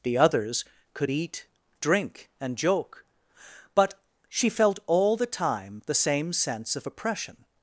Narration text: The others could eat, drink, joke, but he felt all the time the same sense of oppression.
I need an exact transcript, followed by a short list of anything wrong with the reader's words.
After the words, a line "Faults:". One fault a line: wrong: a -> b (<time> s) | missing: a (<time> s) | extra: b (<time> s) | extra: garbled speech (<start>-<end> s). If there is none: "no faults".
The others could eat, drink, and joke, but she felt all the time the same sense of oppression.
Faults:
extra: and (2.4 s)
wrong: he -> she (4.3 s)